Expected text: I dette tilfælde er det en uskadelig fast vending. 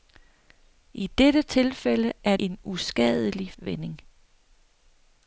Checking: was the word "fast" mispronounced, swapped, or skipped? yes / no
yes